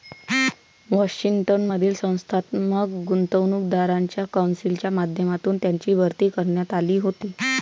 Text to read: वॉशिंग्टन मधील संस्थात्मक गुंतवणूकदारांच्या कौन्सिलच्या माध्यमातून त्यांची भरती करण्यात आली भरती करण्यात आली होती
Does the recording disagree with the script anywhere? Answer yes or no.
yes